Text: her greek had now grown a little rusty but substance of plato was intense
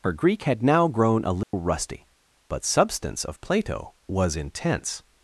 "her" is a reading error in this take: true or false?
false